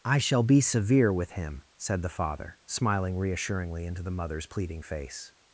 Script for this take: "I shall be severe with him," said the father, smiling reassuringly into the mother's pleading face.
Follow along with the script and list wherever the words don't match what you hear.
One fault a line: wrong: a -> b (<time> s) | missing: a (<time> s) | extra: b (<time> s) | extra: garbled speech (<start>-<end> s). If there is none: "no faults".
no faults